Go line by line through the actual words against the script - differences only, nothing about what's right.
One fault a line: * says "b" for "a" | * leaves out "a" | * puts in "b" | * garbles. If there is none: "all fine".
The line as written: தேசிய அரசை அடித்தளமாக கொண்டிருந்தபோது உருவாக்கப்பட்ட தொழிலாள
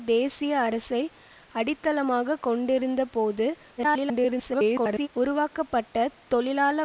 * garbles